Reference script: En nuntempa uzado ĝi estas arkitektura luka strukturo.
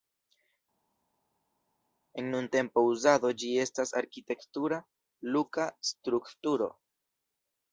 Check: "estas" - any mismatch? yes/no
no